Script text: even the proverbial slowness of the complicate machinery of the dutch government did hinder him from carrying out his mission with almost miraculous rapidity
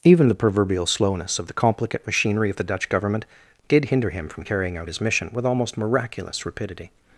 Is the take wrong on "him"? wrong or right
right